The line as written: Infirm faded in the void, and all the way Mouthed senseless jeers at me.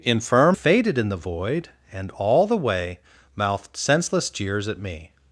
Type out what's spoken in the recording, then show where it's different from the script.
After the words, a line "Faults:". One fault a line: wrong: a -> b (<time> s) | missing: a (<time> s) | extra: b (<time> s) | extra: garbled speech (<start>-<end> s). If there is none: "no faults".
Infirm faded in the void, and all the way Mouthed senseless jeers at me.
Faults:
no faults